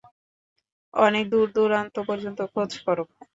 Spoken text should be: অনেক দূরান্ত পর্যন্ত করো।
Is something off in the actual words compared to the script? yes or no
yes